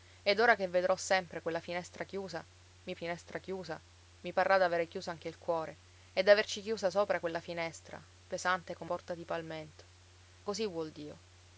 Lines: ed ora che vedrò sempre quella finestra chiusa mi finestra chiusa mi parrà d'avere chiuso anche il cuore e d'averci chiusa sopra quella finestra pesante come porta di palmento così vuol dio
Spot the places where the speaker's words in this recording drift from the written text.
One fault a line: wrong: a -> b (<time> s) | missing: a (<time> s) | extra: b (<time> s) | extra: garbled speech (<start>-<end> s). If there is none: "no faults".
no faults